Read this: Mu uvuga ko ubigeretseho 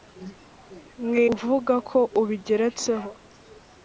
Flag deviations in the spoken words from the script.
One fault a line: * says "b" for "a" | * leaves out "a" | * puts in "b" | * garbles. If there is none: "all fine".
all fine